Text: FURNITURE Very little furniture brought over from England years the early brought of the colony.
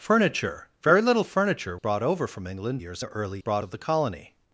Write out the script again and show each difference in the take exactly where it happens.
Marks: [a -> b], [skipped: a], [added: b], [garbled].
FURNITURE Very little furniture brought over from England years the early brought of the colony.